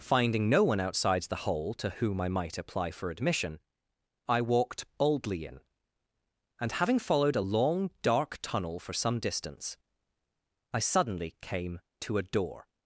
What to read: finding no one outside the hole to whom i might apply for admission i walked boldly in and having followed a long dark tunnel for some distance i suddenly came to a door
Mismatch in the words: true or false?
false